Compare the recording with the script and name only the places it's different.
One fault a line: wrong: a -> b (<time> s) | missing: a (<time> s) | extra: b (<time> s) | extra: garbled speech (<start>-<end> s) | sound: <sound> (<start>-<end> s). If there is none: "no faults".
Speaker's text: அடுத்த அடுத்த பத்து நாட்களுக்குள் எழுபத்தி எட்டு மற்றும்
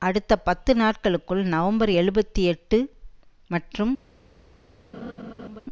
missing: அடுத்த (0.3 s)
extra: நவம்பர் (1.5 s)
sound: laugh (4.9-5.6 s)